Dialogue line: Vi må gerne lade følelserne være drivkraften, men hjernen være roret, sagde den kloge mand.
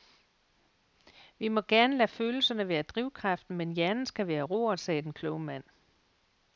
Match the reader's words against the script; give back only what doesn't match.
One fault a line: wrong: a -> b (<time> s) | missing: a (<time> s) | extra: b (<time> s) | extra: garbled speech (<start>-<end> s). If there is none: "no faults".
extra: skal (4.0 s)